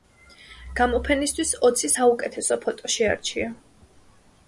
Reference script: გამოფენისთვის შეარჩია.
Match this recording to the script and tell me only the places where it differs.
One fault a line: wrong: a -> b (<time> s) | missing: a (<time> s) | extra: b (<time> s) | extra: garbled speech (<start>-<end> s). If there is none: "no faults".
extra: ოცი საუკეთესო ფოტო (1.7 s)